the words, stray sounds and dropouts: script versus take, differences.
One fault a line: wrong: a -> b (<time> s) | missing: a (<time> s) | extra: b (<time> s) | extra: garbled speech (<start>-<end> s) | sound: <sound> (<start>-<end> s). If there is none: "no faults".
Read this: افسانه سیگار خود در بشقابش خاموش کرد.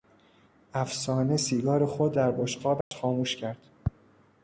sound: dropout (2.8-2.9 s)